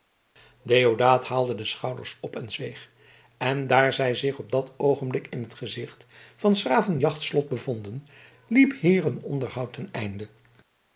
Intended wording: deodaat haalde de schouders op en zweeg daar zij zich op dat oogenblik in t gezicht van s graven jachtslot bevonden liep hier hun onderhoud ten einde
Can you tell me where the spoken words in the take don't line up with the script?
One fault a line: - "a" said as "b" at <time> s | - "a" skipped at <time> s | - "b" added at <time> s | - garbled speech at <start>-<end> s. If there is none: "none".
- "en" added at 3.4 s